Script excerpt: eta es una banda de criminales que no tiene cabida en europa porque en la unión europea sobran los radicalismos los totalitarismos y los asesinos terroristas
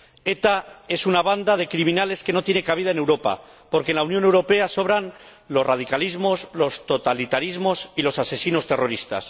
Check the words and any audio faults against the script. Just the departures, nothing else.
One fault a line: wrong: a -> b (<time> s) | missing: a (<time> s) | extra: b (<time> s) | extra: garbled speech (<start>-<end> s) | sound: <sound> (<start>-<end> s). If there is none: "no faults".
no faults